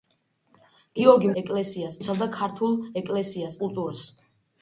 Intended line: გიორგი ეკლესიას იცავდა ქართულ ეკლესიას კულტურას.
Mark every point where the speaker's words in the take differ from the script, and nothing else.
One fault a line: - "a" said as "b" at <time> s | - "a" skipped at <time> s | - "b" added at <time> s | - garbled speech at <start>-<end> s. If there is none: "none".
none